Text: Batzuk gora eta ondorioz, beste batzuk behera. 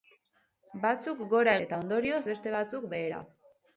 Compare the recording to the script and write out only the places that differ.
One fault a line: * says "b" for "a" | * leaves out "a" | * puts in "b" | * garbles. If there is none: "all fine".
all fine